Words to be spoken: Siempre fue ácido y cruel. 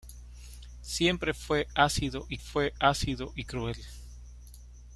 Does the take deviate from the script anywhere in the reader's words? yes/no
yes